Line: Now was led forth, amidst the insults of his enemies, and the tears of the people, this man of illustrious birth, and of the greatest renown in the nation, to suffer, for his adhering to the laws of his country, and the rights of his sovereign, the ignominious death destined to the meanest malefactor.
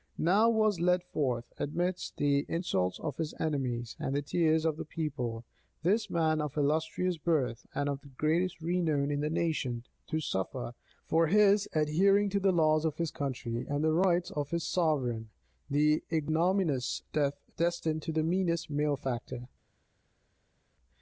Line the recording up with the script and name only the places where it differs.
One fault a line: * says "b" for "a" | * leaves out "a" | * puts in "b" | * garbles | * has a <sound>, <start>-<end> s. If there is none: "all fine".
all fine